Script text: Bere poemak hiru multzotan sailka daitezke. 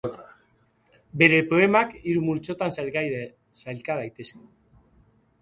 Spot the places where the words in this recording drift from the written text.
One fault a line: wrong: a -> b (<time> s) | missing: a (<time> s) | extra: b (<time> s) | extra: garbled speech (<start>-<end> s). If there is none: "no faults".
no faults